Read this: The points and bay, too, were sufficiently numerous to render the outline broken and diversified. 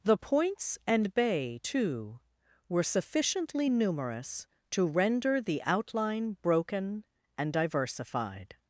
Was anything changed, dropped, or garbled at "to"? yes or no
no